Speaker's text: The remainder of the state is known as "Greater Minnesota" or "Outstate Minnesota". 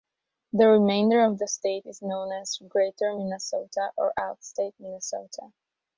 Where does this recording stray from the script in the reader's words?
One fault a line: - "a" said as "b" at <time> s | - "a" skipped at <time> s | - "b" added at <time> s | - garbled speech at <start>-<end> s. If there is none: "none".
none